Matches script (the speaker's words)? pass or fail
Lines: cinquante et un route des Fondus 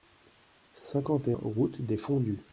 fail